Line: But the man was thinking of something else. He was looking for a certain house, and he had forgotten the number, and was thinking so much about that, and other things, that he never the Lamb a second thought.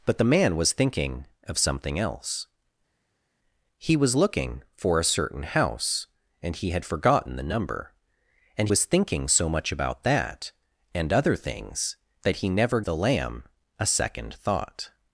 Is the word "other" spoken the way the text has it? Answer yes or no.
yes